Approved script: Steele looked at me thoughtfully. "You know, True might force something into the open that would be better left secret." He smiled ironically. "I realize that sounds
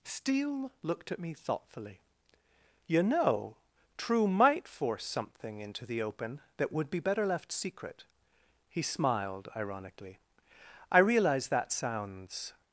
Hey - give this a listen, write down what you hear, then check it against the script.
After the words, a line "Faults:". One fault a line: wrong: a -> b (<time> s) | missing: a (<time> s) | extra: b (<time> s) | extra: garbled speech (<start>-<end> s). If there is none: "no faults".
Steele looked at me thoughtfully. "You know, True might force something into the open that would be better left secret." He smiled ironically. "I realize that sounds
Faults:
no faults